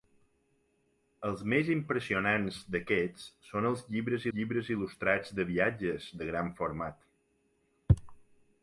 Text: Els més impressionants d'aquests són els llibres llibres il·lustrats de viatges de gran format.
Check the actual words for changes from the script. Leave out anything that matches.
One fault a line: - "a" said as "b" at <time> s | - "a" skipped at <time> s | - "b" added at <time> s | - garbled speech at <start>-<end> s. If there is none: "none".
none